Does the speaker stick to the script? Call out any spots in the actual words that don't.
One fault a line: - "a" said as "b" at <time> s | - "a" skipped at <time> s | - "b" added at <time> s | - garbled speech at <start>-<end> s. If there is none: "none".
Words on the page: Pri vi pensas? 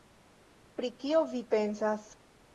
- "kio" added at 1.0 s